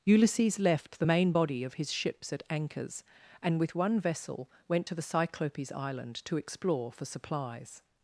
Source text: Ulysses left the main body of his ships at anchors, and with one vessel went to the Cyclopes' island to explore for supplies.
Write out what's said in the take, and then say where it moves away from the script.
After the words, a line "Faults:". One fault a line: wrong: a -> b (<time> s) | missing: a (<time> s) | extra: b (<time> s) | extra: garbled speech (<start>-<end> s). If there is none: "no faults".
Ulysses left the main body of his ships at anchors, and with one vessel went to the Cyclopes' island to explore for supplies.
Faults:
no faults